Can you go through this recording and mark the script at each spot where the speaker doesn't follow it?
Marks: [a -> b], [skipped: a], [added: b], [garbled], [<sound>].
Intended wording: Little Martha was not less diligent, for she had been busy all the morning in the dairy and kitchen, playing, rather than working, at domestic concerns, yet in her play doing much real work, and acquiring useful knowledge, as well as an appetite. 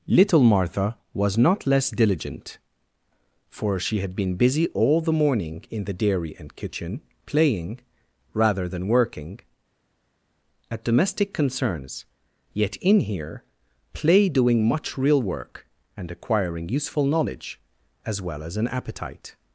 Little Martha was not less diligent, for she had been busy all the morning in the dairy and kitchen, playing, rather than working, at domestic concerns, yet in [her -> here] play doing much real work, and acquiring useful knowledge, as well as an appetite.